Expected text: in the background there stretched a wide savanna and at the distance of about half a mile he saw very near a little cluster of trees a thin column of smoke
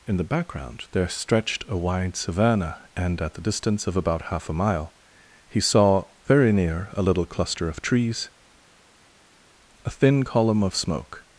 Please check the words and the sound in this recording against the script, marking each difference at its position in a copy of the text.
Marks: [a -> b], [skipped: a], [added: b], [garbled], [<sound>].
in the background there stretched a wide savanna and at the distance of about half a mile he saw very near a little cluster of trees a thin column of smoke